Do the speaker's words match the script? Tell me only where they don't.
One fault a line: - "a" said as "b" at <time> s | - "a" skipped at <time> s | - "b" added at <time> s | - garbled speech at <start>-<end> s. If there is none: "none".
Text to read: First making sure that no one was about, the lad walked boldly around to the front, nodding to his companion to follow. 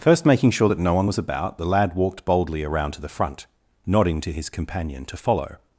none